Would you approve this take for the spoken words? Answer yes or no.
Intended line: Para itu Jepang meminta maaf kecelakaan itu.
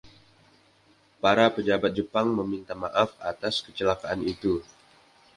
no